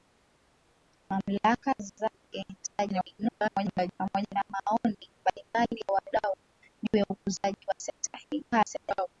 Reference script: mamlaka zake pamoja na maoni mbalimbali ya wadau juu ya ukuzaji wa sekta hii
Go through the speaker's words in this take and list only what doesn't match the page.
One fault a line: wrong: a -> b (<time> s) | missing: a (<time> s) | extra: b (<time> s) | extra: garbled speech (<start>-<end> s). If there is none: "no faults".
extra: garbled speech (2.6-3.9 s)
extra: garbled speech (8.5-9.1 s)